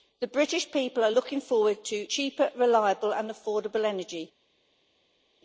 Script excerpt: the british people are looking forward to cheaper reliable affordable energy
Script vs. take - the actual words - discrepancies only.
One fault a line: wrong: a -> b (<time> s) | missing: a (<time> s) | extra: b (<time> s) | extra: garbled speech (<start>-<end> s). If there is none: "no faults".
extra: and (3.1 s)